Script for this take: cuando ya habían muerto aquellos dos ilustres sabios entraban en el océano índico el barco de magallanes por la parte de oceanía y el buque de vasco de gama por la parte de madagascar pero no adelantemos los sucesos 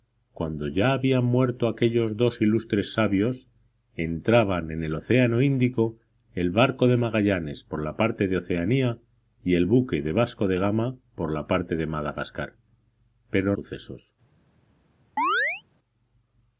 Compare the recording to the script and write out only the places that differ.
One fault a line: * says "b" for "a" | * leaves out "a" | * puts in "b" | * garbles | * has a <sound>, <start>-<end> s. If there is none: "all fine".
* leaves out "no adelantemos los"
* has a chirp, 15.2-15.6 s